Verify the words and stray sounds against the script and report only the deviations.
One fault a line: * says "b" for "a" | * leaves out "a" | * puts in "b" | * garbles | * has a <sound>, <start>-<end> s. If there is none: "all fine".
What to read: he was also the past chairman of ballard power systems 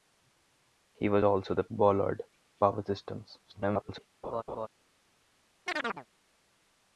* leaves out "past chairman of"
* garbles
* has a laugh, 4.2-4.7 s
* has a chirp, 5.7-6.1 s